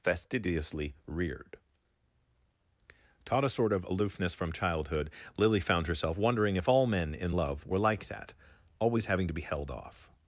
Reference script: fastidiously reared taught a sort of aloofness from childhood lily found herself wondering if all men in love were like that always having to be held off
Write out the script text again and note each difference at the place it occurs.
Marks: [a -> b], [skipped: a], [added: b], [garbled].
fastidiously reared taught a sort of aloofness from childhood lily found herself wondering if all men in love were like that always having to be held off